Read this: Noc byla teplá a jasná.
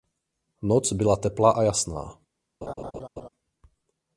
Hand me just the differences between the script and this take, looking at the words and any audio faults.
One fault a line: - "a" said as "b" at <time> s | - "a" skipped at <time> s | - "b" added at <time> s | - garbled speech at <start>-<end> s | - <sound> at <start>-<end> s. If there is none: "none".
- laugh at 2.6-3.3 s